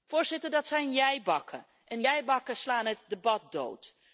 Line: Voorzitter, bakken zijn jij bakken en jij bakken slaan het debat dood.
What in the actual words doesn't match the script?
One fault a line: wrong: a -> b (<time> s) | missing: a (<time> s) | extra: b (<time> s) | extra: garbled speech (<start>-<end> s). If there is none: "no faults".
wrong: bakken -> dat (0.5 s)